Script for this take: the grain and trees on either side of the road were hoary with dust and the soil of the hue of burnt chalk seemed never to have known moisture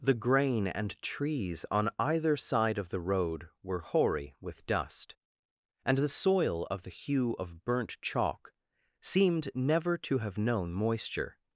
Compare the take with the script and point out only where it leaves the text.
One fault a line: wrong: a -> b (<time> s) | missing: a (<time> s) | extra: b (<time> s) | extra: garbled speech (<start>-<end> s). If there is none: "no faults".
no faults